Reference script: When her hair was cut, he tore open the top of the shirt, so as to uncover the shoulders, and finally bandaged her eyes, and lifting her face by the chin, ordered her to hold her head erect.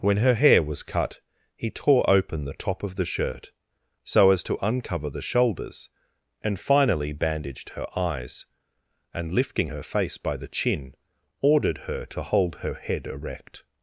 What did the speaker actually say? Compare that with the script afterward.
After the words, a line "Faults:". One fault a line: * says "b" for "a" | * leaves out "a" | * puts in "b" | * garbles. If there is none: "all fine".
When her hair was cut, he tore open the top of the shirt, so as to uncover the shoulders, and finally bandaged her eyes, and lifting her face by the chin, ordered her to hold her head erect.
Faults:
all fine